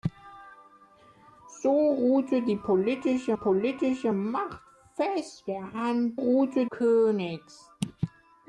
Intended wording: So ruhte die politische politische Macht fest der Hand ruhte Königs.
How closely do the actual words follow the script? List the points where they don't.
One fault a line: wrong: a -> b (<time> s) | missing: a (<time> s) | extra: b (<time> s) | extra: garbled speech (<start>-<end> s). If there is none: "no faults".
no faults